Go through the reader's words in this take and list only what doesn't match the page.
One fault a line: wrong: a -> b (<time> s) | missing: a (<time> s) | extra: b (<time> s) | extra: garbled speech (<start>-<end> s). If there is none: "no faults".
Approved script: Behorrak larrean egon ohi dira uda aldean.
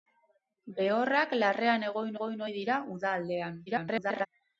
extra: egon (2.2 s)
extra: garbled speech (3.7-4.3 s)